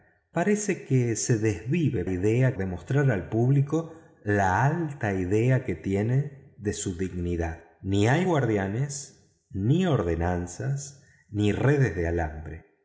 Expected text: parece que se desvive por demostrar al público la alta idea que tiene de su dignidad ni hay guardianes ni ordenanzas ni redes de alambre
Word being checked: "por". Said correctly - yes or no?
no